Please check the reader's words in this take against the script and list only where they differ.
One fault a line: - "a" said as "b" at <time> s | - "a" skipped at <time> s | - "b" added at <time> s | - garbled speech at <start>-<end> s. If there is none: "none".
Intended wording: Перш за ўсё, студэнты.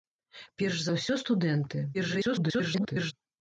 - garbled speech at 1.9-3.1 s